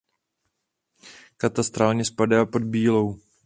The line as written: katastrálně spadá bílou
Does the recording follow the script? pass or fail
fail